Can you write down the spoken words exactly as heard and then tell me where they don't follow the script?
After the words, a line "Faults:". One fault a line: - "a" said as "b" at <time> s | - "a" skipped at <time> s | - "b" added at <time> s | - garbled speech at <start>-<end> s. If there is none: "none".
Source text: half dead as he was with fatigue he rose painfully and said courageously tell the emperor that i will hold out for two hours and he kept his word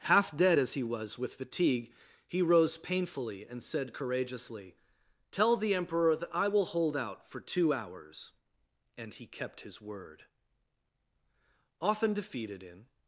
half dead as he was with fatigue he rose painfully and said courageously tell the emperor that i will hold out for two hours and he kept his word often defeated in
Faults:
- "often defeated in" added at 11.8 s